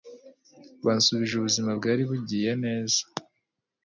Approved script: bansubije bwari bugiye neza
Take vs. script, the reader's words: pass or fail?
fail